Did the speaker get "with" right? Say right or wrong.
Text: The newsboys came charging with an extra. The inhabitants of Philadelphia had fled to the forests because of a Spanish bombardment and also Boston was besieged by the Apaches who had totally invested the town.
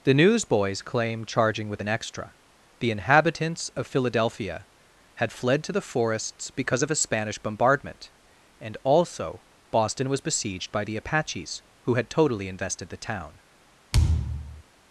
right